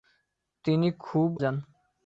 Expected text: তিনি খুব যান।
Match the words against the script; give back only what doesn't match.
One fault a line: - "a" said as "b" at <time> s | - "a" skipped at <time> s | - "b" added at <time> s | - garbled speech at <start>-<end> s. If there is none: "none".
none